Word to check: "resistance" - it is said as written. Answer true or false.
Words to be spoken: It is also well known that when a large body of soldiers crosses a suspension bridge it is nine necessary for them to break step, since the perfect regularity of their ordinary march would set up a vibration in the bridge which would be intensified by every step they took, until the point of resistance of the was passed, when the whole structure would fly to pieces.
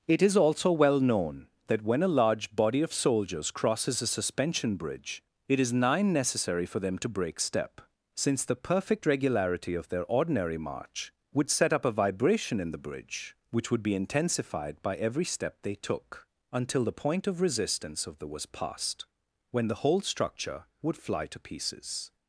true